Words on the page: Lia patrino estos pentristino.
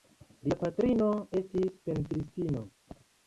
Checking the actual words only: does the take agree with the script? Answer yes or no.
no